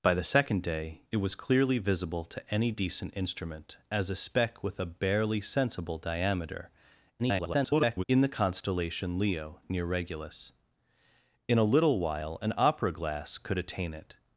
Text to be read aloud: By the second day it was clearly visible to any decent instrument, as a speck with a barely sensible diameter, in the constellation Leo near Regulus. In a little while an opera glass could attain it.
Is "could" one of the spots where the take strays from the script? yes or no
no